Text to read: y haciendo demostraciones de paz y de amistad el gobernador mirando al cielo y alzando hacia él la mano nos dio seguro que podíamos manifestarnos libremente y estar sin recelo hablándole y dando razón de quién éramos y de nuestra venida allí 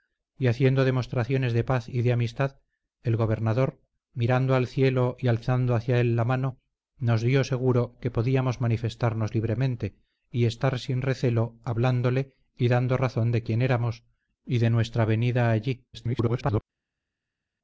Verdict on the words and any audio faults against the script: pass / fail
fail